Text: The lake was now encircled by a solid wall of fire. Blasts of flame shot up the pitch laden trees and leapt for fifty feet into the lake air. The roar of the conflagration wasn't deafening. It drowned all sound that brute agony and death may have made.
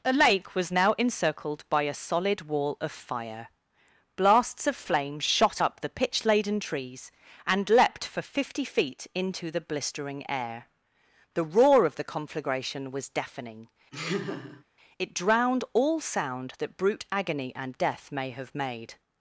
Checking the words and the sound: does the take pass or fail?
fail